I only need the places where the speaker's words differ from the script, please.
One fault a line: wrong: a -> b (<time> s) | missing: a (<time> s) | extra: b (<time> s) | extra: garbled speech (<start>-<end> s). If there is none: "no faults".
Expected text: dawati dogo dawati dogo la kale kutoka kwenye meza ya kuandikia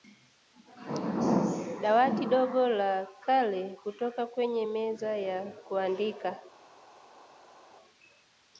missing: dawati dogo (2.7 s)